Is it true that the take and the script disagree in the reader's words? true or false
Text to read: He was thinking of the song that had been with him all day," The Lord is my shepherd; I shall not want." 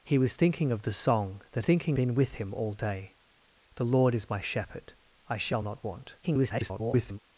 true